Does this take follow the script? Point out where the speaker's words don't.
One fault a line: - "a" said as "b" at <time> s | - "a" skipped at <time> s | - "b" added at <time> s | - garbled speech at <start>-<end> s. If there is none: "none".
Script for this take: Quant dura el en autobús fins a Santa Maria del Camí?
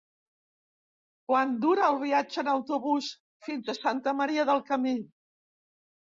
- "viatge" added at 2.0 s